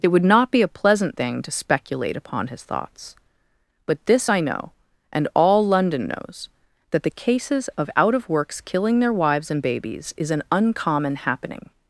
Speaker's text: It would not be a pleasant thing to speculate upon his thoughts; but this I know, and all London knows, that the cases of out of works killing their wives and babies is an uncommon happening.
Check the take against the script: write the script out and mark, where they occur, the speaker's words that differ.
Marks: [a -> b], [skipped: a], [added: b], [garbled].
It would not be a pleasant thing to speculate upon his thoughts; but this I know, and all London knows, that the cases of out of works killing their wives and babies is an uncommon happening.